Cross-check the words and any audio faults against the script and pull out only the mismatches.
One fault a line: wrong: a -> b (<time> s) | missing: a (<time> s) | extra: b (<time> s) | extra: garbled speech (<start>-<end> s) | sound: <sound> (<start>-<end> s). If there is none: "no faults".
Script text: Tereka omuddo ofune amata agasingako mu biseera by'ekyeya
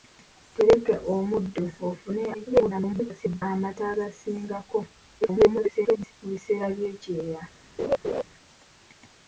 extra: garbled speech (2.3-3.4 s)
extra: garbled speech (5.2-6.1 s)
sound: laugh (7.8-8.2 s)